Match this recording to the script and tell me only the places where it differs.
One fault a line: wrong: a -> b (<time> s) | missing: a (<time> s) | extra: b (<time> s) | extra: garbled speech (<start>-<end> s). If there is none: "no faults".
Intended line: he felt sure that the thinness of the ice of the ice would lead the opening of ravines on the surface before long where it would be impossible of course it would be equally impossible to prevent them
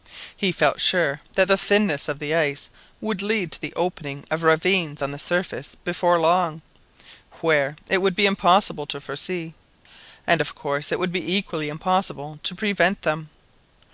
missing: of the ice (2.7 s)
extra: to (3.5 s)
extra: to foresee and (8.9 s)